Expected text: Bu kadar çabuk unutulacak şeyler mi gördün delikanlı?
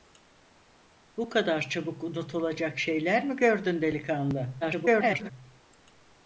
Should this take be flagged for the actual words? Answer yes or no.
yes